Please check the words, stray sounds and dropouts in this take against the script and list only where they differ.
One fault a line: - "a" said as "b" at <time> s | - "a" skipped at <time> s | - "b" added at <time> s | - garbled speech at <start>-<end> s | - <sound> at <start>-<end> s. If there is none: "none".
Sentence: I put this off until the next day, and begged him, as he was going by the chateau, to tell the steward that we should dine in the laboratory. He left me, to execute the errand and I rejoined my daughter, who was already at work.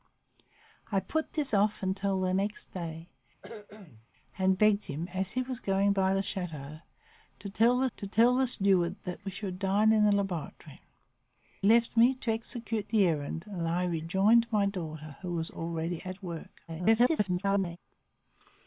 - cough at 3.4-4.1 s
- "to tell the" added at 7.9 s
- "He" skipped at 10.8 s
- garbled speech at 16.7-17.8 s